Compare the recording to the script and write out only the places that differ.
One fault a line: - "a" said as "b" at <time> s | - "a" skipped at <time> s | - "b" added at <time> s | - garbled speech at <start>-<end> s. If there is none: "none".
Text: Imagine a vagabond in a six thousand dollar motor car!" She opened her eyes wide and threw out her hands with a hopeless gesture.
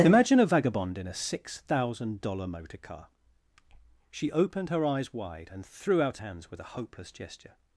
- "her" skipped at 6.2 s